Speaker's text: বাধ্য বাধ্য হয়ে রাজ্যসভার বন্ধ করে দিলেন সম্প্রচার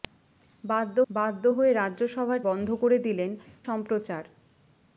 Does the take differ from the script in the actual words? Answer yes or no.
no